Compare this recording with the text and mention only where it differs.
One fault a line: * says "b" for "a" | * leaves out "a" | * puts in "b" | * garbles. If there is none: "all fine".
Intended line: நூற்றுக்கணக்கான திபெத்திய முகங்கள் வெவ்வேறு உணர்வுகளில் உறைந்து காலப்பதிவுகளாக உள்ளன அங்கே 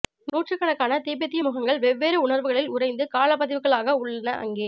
all fine